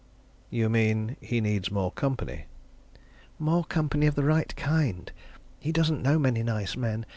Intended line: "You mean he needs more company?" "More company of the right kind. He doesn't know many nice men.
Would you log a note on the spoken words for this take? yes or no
no